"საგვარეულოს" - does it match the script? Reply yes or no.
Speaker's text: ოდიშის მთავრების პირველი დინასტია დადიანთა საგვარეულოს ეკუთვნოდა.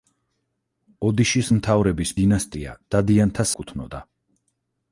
no